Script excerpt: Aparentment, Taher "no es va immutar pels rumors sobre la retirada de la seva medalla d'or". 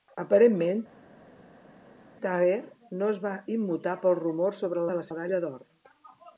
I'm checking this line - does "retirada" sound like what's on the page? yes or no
no